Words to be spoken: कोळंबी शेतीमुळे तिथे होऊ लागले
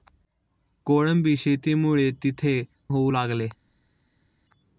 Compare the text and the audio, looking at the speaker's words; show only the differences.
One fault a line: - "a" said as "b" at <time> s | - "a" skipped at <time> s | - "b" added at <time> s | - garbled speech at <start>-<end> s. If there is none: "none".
none